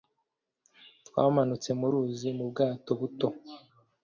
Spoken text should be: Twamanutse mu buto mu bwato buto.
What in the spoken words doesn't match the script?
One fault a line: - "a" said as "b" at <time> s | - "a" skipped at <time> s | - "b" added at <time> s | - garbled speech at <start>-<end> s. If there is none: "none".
- "buto" said as "ruzi" at 1.9 s